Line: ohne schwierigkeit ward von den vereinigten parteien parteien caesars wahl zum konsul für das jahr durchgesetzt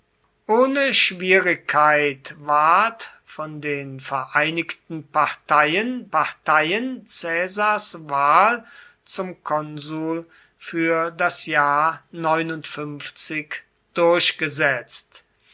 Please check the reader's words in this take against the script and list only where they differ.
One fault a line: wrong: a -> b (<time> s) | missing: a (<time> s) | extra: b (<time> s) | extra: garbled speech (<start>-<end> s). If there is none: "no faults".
no faults